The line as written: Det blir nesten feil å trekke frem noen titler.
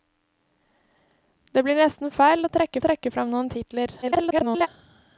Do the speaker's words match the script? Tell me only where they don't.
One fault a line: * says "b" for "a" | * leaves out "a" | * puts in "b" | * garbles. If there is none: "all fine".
* puts in "trekke"
* garbles